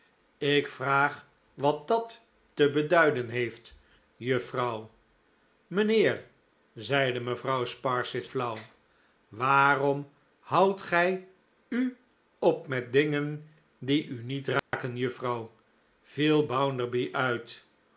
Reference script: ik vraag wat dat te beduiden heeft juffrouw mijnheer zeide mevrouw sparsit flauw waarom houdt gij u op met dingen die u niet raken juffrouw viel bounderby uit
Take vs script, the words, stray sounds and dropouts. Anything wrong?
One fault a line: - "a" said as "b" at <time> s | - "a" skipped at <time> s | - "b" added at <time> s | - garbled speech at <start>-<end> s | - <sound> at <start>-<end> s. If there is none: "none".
- dropout at 14.6-14.7 s